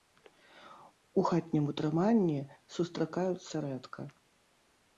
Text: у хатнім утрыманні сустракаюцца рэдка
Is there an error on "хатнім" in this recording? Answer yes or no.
no